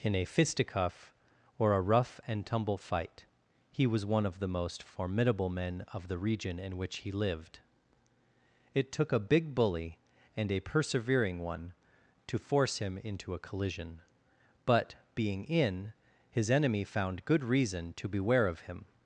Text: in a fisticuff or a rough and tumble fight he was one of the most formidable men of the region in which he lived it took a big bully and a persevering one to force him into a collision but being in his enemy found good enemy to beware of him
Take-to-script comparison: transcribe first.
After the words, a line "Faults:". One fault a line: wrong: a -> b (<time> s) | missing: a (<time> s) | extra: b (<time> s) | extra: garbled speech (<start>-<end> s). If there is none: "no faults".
in a fisticuff or a rough and tumble fight he was one of the most formidable men of the region in which he lived it took a big bully and a persevering one to force him into a collision but being in his enemy found good reason to beware of him
Faults:
wrong: enemy -> reason (17.4 s)